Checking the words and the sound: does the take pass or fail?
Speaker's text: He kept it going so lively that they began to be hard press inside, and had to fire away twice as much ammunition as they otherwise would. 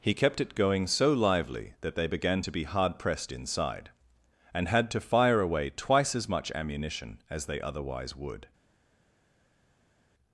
fail